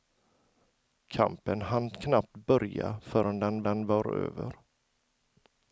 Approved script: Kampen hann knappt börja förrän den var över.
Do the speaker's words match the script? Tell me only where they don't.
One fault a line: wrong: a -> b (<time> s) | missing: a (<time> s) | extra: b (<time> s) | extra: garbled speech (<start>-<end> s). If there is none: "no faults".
extra: den (3.6 s)